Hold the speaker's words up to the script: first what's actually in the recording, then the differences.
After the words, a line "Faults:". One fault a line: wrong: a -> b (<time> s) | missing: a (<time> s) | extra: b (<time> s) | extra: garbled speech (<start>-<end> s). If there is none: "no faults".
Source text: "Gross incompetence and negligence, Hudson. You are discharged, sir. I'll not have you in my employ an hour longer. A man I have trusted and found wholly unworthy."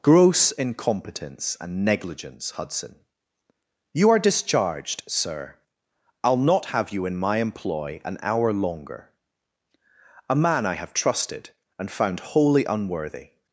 "Gross incompetence and negligence, Hudson. You are discharged, sir. I'll not have you in my employ an hour longer. A man I have trusted and found wholly unworthy."
Faults:
no faults